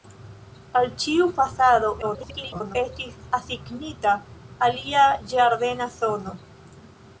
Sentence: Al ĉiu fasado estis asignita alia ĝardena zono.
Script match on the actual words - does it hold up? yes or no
no